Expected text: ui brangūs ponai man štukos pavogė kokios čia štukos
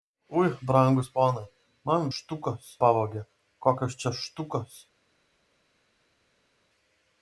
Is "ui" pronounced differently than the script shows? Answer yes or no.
no